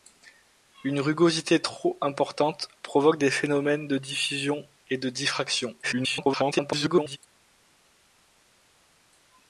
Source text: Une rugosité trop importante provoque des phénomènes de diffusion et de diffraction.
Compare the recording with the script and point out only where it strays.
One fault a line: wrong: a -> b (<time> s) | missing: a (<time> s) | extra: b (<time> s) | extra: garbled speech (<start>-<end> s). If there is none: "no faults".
extra: garbled speech (5.8-7.2 s)